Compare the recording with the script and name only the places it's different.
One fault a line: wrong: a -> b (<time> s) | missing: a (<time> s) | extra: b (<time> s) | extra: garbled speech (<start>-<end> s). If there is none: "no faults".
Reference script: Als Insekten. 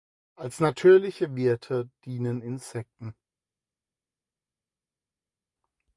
extra: natürliche Wirte dienen (0.6 s)